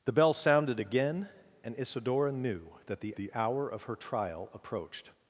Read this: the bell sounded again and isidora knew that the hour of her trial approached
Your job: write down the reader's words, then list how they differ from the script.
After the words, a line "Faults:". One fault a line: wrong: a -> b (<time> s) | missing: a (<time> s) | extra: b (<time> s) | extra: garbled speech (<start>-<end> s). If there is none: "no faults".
the bell sounded again and isidora knew that the the hour of her trial approached
Faults:
extra: the (3.2 s)